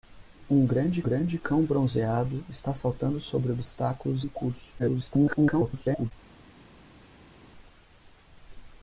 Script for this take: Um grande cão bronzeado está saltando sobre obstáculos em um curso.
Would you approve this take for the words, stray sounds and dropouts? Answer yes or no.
no